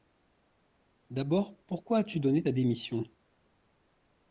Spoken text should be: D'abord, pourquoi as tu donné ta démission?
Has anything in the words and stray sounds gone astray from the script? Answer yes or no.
no